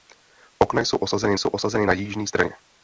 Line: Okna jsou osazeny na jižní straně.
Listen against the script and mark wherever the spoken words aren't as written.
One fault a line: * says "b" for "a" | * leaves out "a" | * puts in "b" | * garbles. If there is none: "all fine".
* puts in "jsou osazeny"